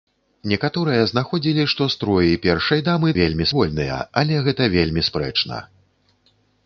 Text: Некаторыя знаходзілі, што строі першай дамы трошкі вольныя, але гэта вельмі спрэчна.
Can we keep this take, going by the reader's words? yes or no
no